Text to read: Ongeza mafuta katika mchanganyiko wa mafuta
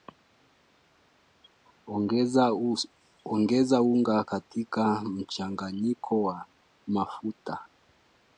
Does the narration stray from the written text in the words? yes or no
yes